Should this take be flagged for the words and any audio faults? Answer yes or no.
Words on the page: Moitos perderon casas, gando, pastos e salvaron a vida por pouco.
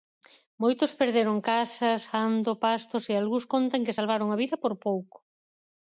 yes